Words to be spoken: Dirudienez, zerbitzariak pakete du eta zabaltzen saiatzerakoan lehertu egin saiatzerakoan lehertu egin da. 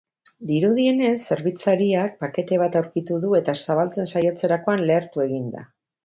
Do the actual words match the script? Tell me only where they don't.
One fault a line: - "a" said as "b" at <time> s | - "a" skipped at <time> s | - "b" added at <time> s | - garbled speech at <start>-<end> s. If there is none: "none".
- "bat aurkitu" added at 2.6 s
- "saiatzerakoan lehertu egin" skipped at 5.5 s